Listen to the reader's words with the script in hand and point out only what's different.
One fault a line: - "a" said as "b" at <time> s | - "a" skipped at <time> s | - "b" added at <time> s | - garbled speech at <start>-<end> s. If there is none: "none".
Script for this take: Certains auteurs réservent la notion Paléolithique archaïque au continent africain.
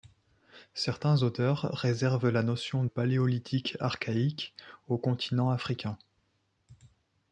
none